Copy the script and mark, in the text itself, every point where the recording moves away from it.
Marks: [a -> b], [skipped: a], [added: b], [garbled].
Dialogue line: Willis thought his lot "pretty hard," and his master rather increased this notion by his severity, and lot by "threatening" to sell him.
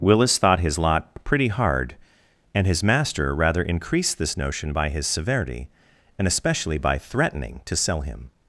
Willis thought his lot "pretty hard," and his master rather increased this notion by his severity, and [lot -> especially] by "threatening" to sell him.